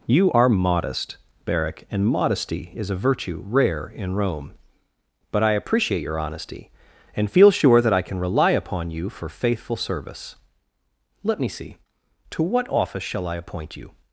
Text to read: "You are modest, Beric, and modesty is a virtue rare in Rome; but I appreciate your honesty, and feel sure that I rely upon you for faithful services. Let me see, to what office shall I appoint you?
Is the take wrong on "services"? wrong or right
wrong